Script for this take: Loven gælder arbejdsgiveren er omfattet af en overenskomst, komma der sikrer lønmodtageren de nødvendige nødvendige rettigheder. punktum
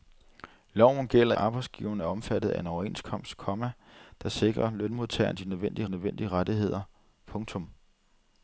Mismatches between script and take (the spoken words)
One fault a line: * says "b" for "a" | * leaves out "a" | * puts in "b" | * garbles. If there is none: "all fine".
all fine